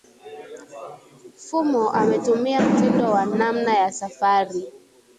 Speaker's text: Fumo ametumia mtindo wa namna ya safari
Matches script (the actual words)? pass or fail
pass